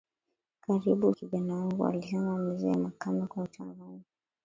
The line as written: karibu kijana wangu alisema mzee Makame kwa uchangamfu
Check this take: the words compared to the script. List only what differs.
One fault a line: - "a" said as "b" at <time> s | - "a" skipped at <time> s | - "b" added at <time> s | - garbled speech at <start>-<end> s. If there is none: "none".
none